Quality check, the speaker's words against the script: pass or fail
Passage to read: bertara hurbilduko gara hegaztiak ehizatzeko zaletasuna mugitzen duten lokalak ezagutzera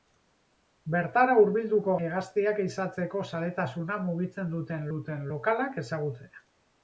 fail